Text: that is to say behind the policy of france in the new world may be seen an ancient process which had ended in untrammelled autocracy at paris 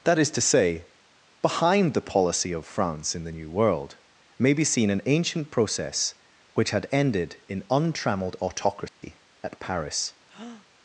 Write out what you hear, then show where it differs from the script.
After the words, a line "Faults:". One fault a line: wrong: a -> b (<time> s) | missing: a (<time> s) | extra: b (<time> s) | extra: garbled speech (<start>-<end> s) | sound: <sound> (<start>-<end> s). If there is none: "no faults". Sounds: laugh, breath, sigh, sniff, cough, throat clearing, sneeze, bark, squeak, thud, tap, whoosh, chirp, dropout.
that is to say behind the policy of france in the new world may be seen an ancient process which had ended in untrammelled autocracy at paris
Faults:
sound: dropout (8.9-9.0 s)
sound: breath (10.3-10.7 s)